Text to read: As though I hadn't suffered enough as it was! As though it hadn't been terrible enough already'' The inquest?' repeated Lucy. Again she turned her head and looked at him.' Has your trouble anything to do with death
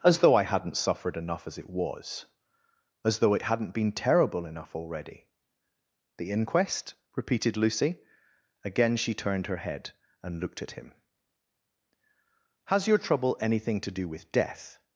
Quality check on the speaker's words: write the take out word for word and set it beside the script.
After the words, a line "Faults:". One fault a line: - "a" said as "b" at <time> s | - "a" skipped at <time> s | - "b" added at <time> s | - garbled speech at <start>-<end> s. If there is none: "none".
As though I hadn't suffered enough as it was! As though it hadn't been terrible enough already'' The inquest?' repeated Lucy. Again she turned her head and looked at him.' Has your trouble anything to do with death
Faults:
none